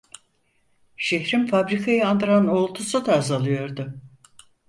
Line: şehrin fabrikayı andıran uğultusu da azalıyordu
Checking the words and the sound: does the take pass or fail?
pass